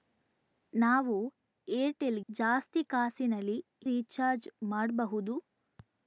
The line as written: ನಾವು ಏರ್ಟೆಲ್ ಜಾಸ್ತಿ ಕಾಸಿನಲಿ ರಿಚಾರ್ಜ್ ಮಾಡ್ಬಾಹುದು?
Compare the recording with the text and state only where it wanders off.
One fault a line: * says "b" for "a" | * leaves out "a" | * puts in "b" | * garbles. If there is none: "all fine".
all fine